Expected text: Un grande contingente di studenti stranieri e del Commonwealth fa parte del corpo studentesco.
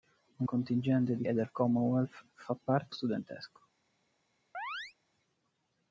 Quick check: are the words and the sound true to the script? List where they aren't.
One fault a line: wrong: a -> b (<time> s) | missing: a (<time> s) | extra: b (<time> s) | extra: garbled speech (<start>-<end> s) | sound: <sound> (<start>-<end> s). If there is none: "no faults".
missing: grande (0.5 s)
missing: studenti stranieri (1.2 s)
missing: del corpo (3.0 s)
sound: chirp (4.5-4.9 s)